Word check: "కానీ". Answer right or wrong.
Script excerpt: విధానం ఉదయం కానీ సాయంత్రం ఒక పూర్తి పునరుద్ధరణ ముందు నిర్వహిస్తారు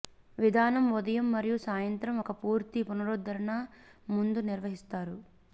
wrong